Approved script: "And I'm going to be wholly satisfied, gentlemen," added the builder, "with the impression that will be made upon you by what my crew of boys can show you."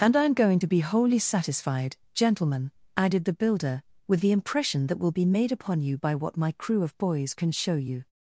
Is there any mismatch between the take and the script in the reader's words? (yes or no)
no